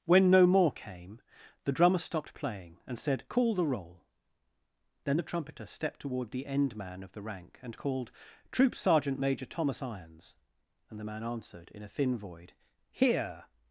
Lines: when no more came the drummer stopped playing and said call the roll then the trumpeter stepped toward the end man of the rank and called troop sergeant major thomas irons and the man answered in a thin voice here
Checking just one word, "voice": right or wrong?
wrong